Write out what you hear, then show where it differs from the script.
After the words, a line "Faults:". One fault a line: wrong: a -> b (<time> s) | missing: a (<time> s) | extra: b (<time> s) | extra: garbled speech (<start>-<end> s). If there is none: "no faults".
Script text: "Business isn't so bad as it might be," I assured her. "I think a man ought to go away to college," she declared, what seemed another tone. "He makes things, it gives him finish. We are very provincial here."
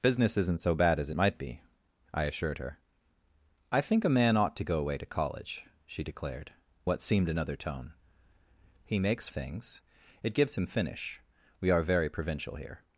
"Business isn't so bad as it might be," I assured her. "I think a man ought to go away to college," she declared, what seemed another tone. "He makes things, it gives him finish. We are very provincial here."
Faults:
no faults